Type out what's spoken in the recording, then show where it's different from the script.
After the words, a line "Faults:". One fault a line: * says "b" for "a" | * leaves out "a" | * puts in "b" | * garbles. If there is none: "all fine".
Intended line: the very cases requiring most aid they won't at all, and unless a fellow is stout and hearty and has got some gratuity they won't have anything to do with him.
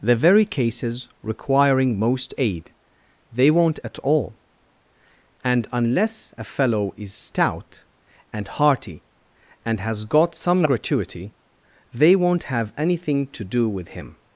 the very cases requiring most aid they won't at all, and unless a fellow is stout and hearty and has got some gratuity they won't have anything to do with him.
Faults:
all fine